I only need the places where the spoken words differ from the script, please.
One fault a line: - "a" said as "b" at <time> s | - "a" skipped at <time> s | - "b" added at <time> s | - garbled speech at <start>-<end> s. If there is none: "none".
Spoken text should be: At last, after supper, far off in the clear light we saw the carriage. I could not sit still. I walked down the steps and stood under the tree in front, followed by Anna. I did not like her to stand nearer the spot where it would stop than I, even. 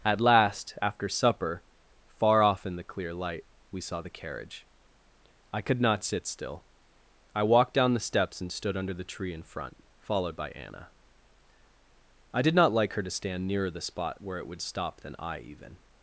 none